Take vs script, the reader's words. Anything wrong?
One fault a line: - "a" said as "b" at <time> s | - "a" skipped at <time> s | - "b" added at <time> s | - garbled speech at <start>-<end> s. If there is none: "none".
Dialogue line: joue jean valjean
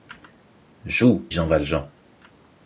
none